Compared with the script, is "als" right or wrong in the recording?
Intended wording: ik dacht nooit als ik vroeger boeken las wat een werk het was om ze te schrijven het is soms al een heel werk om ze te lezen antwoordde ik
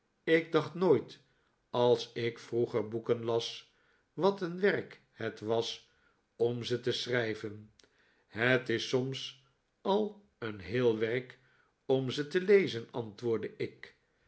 right